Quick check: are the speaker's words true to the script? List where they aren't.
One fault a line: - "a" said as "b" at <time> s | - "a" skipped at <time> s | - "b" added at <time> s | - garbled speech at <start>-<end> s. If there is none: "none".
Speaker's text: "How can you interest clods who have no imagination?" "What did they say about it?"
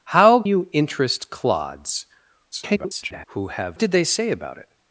- "can" skipped at 0.4 s
- garbled speech at 2.5-3.2 s
- "no imagination What" skipped at 3.8 s